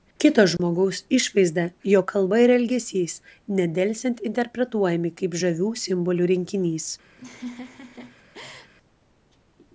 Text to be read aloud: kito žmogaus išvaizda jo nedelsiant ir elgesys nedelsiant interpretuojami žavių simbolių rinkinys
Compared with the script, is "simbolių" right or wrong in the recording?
right